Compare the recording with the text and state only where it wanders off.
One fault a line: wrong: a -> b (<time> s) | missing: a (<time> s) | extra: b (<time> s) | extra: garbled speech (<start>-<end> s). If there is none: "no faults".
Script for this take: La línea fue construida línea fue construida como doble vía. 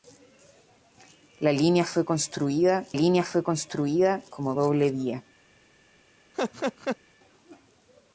no faults